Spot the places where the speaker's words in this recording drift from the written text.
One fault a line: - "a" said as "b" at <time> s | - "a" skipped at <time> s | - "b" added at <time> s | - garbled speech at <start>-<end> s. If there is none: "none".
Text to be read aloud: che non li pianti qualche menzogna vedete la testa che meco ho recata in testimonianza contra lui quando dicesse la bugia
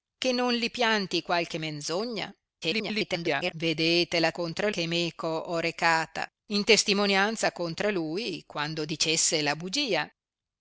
- garbled speech at 2.6-3.5 s
- "testa" said as "contra" at 4.3 s